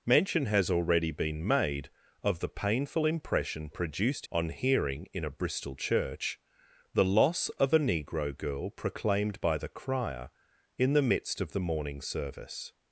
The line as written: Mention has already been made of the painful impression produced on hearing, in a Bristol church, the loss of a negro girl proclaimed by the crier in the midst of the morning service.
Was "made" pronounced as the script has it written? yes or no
yes